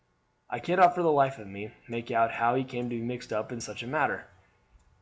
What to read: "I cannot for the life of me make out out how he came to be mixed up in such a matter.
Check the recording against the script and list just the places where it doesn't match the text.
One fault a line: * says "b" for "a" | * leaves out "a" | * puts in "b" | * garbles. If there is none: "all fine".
* leaves out "out"